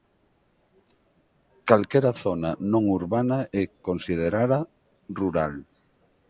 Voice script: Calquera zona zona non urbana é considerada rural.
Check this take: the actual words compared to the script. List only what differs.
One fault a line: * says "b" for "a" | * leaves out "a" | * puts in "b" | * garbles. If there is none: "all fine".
* leaves out "zona"